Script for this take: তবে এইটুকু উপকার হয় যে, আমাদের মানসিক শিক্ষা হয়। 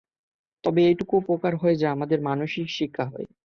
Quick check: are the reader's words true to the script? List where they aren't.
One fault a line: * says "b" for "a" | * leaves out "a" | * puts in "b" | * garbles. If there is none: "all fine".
all fine